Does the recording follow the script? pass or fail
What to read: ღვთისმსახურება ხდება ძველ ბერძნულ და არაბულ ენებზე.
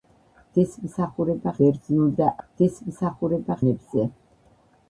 fail